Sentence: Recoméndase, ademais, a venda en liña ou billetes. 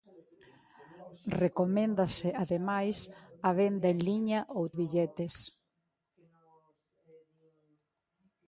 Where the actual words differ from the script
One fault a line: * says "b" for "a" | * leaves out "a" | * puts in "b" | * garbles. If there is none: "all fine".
all fine